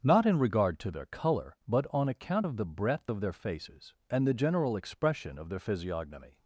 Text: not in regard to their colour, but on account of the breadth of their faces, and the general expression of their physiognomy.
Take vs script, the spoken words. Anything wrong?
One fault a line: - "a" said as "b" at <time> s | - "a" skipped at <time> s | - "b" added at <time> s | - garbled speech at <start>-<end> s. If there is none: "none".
none